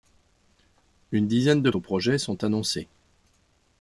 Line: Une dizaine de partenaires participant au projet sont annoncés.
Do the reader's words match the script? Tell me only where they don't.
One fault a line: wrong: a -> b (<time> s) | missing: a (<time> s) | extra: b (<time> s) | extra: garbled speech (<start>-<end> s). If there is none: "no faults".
missing: partenaires participant (1.7 s)